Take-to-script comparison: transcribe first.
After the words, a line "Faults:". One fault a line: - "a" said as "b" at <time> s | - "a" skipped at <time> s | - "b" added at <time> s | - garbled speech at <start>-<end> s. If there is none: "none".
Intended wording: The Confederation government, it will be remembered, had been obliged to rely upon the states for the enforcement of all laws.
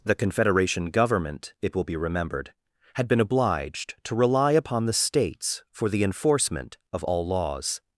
The Confederation government, it will be remembered, had been obliged to rely upon the states for the enforcement of all laws.
Faults:
none